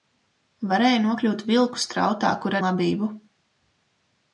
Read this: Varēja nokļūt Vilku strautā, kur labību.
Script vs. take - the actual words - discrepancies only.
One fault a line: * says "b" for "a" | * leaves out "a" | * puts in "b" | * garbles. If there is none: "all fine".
all fine